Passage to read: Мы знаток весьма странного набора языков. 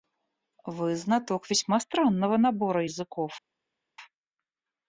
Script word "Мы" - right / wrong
wrong